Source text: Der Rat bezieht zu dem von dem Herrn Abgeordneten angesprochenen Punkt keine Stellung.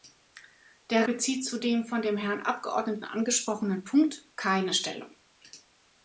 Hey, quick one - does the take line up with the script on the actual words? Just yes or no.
no